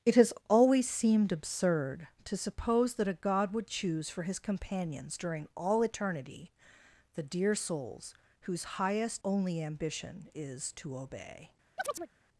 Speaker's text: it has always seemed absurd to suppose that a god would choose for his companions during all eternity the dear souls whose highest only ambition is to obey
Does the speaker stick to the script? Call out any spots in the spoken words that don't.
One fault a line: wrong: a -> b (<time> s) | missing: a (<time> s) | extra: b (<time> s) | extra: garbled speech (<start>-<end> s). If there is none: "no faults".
no faults